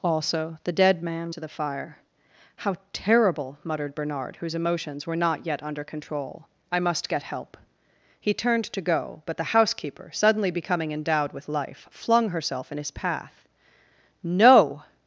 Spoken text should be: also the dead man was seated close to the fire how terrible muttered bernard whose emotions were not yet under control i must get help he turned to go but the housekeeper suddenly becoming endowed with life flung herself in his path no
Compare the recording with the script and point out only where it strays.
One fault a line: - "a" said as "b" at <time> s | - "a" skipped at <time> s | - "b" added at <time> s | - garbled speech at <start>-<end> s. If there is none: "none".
- "was seated close" skipped at 1.3 s